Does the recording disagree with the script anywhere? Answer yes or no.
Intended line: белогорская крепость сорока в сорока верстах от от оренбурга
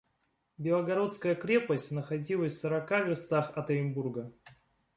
yes